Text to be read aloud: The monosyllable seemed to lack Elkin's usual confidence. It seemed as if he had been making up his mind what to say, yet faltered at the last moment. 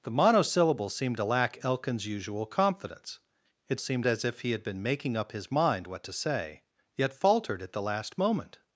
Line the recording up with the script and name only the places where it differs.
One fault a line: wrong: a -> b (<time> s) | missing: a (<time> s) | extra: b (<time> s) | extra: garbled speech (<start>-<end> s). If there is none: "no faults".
no faults